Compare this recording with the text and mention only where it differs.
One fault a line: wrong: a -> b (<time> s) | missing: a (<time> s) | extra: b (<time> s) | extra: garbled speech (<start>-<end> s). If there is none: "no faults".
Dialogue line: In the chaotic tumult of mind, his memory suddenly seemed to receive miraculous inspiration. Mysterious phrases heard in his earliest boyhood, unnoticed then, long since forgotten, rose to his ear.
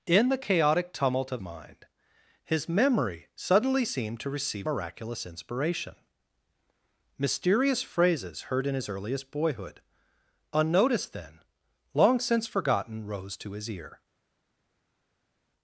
no faults